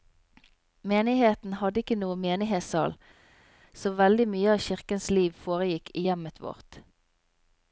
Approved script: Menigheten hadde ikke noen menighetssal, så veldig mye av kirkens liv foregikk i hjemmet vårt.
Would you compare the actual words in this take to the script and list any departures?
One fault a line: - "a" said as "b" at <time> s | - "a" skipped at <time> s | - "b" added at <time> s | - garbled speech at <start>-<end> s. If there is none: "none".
none